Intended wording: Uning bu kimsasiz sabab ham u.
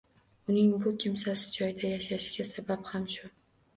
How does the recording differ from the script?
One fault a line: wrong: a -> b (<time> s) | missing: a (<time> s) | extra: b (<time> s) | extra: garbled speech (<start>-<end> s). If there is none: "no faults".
extra: joyda yashashiga (1.6 s)
wrong: u -> shu (3.2 s)